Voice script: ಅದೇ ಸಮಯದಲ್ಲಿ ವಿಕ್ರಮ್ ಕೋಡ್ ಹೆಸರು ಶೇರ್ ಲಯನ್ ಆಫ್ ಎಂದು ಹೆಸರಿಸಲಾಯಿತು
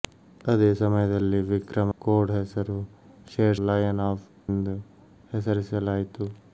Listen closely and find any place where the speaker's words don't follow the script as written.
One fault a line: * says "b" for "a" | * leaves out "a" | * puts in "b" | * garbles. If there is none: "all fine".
all fine